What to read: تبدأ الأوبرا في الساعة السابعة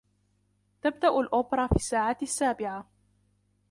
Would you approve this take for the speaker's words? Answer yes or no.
yes